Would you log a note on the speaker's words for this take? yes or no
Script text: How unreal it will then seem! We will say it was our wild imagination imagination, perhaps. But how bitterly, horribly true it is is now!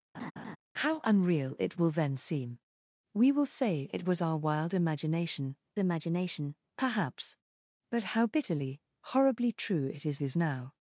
no